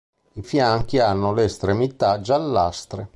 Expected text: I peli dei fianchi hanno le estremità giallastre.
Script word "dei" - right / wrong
wrong